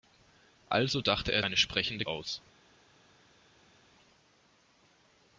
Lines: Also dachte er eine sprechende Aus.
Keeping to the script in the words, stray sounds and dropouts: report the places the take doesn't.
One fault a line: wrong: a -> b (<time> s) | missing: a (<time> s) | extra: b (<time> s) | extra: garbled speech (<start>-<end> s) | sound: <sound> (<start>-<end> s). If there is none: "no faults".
no faults